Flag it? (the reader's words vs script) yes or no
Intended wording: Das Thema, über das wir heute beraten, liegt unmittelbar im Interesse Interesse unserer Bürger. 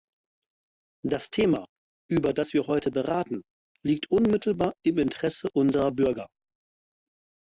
yes